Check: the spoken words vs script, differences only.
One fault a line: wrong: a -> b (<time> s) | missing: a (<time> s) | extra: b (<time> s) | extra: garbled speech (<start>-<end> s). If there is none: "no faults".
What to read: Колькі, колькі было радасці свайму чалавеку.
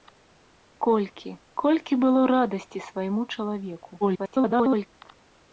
extra: garbled speech (4.0-4.9 s)